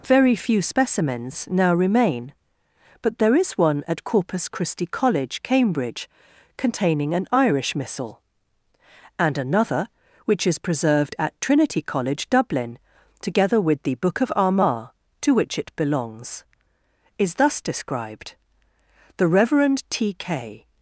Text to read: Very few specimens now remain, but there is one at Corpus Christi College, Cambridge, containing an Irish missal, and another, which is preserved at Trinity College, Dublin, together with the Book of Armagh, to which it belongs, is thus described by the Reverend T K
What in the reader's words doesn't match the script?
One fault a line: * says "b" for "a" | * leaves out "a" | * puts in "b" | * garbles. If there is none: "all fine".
* leaves out "by"